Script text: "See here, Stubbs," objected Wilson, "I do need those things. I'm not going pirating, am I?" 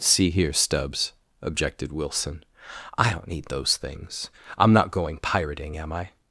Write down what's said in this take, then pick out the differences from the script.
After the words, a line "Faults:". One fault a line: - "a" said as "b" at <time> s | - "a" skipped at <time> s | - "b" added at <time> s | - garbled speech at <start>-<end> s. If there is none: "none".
"See here, Stubbs," objected Wilson, "I don't need those things. I'm not going pirating, am I?"
Faults:
- "do" said as "don't" at 3.1 s